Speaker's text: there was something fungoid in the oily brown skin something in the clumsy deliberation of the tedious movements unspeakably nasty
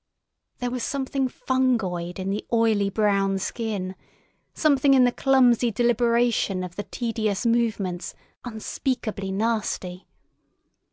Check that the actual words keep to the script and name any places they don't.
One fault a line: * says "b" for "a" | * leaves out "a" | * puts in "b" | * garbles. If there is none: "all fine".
all fine